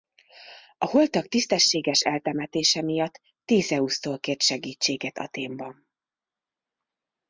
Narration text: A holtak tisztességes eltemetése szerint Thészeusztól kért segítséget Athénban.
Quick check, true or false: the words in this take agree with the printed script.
false